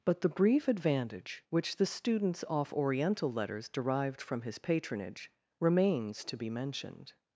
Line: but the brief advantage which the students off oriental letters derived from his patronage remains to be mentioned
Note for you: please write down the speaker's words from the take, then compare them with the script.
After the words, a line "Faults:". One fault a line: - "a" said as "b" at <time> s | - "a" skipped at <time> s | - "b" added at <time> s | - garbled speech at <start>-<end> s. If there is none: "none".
but the brief advantage which the students off oriental letters derived from his patronage remains to be mentioned
Faults:
none